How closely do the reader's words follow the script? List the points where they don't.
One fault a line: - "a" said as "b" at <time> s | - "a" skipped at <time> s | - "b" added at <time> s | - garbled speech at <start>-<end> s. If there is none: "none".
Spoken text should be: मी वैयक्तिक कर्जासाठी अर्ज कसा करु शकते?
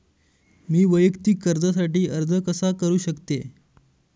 none